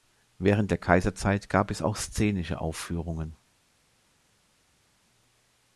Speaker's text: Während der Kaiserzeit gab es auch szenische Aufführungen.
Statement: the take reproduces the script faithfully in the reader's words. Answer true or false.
true